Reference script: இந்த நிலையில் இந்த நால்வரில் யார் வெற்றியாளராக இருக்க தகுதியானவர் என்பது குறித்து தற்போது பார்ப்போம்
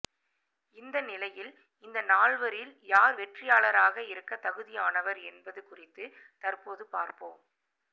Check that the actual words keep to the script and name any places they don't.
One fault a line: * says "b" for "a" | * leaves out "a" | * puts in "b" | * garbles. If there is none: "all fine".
all fine